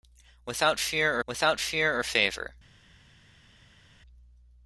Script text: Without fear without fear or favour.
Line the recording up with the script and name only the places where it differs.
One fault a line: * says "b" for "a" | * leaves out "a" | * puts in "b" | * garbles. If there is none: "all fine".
all fine